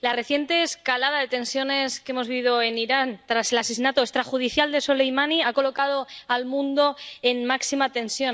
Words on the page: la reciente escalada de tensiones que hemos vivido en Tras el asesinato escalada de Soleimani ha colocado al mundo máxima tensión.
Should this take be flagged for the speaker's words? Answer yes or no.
yes